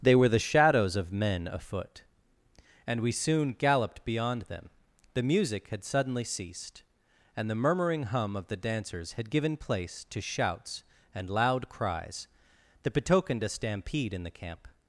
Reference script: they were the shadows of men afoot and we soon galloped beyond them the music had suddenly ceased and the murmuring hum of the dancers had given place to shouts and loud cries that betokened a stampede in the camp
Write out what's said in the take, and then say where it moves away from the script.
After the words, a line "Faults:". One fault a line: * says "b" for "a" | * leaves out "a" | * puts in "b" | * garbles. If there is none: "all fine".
they were the shadows of men afoot and we soon galloped beyond them the music had suddenly ceased and the murmuring hum of the dancers had given place to shouts and loud cries that betokened a stampede in the camp
Faults:
all fine